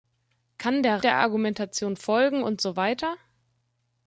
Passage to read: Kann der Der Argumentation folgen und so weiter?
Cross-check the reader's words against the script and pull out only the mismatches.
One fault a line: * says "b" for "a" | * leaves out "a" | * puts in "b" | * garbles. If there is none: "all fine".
all fine